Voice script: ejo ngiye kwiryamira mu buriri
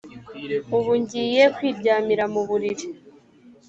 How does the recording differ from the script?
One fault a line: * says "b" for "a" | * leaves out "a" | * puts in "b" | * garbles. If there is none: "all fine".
* says "ubu" for "ejo"